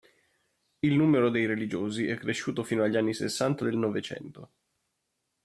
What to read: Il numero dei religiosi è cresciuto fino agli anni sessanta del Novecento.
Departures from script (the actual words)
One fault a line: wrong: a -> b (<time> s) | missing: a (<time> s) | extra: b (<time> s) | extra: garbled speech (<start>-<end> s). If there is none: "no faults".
no faults